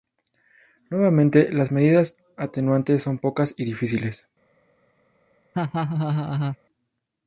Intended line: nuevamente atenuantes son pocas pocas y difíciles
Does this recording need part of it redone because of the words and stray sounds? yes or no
yes